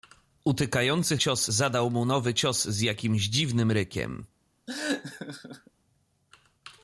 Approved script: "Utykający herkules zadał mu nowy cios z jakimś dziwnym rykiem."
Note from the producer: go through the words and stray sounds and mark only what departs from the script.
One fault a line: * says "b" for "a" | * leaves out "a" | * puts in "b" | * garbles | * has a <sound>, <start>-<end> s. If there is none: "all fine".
* says "cios" for "herkules"
* has a laugh, 4.7-5.7 s